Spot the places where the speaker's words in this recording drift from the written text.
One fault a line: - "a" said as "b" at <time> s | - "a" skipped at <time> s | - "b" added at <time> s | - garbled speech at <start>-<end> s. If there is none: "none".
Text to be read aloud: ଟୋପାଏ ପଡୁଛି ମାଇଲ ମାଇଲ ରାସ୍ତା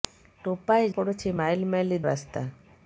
none